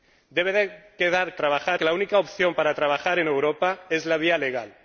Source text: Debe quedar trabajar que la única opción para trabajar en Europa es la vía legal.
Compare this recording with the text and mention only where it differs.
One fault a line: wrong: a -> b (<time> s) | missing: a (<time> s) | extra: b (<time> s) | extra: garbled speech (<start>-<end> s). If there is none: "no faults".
no faults